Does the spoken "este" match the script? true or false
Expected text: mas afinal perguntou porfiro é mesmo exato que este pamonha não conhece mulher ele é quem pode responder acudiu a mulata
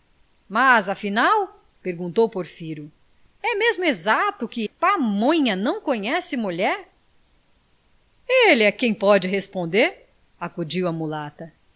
false